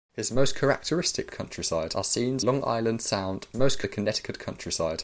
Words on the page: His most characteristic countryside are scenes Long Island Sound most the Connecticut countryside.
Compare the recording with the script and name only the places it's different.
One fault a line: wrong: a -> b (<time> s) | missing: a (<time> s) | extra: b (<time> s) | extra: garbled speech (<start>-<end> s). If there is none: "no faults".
no faults